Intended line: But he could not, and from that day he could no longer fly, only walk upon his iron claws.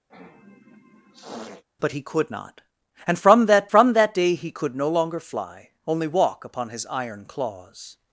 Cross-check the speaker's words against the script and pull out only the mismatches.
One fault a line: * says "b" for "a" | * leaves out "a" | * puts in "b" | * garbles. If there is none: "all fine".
* puts in "from that"